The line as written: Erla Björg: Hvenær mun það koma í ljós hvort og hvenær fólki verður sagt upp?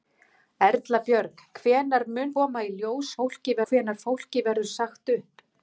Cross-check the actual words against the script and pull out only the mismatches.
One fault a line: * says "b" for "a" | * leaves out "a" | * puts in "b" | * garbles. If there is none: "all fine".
* leaves out "það"
* says "fólki" for "hvort"